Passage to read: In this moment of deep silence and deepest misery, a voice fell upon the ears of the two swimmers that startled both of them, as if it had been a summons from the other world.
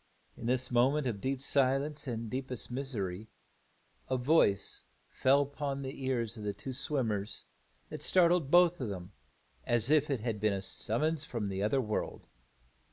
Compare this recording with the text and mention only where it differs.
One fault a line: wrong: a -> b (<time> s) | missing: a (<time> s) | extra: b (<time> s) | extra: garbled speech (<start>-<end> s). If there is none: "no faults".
no faults